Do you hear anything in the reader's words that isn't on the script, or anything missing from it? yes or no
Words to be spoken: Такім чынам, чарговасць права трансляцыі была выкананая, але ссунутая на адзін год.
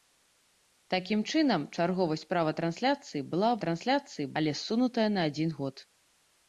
yes